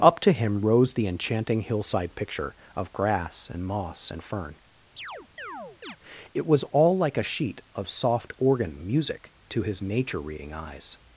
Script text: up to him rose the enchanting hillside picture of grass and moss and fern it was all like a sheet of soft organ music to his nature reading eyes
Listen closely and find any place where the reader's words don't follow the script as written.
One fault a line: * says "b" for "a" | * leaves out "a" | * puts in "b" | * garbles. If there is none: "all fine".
all fine